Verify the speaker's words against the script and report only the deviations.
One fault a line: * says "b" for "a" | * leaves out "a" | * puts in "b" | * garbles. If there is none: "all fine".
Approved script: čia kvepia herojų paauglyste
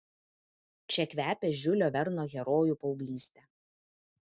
* puts in "žiulio verno"